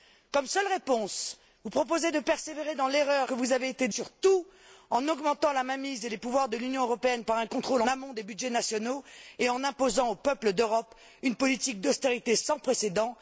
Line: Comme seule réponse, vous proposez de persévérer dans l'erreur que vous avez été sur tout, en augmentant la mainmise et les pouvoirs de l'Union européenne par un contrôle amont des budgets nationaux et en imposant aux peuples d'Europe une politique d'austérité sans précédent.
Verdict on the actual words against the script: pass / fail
pass